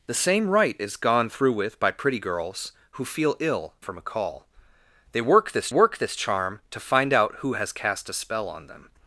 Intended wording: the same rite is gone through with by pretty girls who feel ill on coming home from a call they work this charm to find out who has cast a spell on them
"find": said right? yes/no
yes